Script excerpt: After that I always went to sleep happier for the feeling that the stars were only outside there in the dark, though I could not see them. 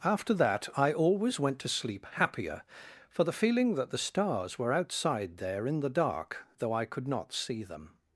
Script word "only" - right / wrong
wrong